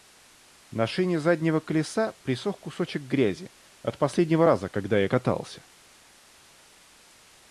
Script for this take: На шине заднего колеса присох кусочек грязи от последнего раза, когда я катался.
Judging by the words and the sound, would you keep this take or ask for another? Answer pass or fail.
pass